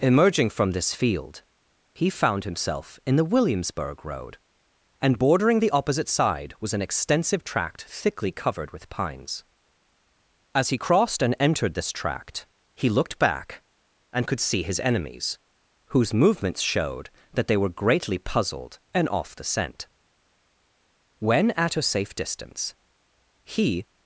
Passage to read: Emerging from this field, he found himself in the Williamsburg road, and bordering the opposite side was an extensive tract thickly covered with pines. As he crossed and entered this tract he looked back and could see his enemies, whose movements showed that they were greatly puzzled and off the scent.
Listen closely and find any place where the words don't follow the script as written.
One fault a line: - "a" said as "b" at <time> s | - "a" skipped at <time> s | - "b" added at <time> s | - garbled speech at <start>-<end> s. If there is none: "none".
- "When at a safe distance he" added at 21.2 s